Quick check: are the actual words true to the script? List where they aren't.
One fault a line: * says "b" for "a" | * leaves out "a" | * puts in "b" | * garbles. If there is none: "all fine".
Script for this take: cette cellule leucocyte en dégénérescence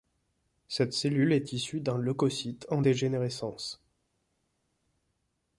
* puts in "est issue d'un"